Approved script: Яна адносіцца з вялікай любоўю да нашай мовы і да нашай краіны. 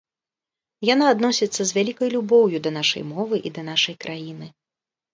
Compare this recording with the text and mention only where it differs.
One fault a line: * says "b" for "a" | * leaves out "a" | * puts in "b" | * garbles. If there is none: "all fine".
all fine